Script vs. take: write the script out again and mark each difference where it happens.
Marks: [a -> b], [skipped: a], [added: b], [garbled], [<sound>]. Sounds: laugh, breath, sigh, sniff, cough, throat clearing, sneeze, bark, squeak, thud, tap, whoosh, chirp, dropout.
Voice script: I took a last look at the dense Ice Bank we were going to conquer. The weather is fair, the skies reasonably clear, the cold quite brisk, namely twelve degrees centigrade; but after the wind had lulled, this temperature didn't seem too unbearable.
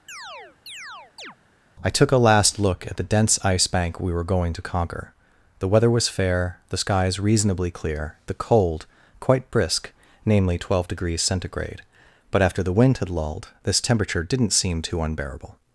[chirp] I took a last look at the dense Ice Bank we were going to conquer. The weather [is -> was] fair, the skies reasonably clear, the cold quite brisk, namely twelve degrees centigrade; but after the wind had lulled, this temperature didn't seem too unbearable.